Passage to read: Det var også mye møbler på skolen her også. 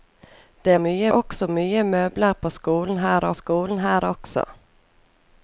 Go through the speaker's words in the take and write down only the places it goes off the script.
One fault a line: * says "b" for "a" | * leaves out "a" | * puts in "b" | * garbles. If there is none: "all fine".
* says "mye" for "var"
* puts in "skolen her"